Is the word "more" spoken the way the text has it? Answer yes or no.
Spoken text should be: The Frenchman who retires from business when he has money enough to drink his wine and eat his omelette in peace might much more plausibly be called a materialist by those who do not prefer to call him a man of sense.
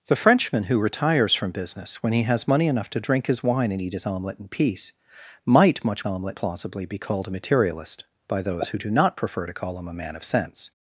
no